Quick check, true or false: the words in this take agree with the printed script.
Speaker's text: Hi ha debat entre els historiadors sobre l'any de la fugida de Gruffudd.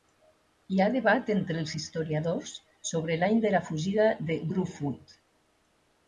true